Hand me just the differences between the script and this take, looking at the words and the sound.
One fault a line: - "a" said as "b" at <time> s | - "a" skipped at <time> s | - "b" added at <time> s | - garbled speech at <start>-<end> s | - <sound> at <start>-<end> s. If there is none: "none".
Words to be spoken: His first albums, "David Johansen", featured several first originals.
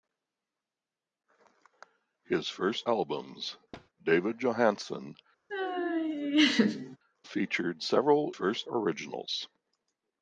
- thud at 3.7-3.9 s
- laugh at 5.5-7.0 s